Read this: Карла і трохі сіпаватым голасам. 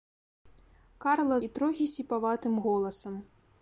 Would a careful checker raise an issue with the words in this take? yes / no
no